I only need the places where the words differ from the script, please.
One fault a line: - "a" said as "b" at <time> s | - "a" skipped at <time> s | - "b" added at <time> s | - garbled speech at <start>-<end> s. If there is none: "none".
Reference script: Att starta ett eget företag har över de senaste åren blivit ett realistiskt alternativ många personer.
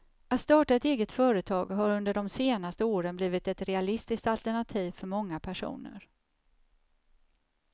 - "över" said as "under" at 1.9 s
- "för" added at 4.9 s